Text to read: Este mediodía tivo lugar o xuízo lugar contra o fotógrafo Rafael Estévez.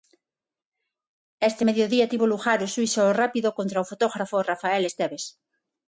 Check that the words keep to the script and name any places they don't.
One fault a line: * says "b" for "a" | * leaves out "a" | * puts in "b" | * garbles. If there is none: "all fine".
* says "rápido" for "lugar"